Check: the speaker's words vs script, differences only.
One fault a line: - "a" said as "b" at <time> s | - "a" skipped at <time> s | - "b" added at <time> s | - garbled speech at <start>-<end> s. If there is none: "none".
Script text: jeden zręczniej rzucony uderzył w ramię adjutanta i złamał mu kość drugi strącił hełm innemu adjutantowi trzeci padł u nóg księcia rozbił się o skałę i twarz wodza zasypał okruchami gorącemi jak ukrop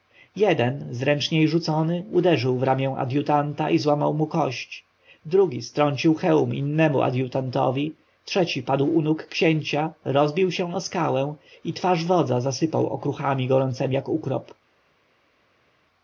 none